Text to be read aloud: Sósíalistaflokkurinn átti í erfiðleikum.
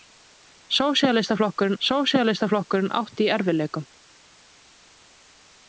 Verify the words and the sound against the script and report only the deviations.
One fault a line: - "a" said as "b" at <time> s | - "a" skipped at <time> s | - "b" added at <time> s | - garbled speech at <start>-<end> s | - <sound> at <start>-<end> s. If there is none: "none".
- "sósíalistaflokkurinn" added at 1.8 s